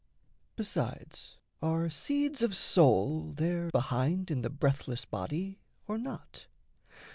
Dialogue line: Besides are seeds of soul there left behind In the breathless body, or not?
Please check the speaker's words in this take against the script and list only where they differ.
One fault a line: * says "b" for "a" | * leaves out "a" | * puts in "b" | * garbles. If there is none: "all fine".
* leaves out "left"